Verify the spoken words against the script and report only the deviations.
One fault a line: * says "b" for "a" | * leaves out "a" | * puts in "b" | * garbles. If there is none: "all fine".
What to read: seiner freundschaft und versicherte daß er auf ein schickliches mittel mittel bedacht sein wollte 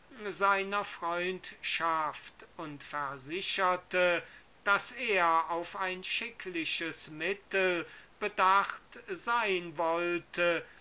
* leaves out "mittel"